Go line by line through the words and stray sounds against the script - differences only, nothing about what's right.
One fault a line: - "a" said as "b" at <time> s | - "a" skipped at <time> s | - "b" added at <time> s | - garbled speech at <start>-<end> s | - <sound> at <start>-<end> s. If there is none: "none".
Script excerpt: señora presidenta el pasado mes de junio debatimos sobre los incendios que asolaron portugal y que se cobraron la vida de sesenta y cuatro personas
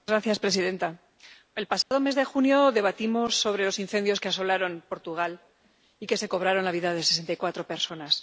- dropout at 1.8-1.9 s